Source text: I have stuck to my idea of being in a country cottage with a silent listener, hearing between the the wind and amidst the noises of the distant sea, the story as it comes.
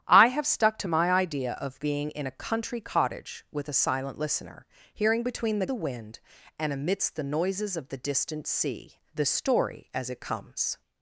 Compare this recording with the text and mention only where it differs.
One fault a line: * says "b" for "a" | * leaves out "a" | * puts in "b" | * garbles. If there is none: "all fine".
all fine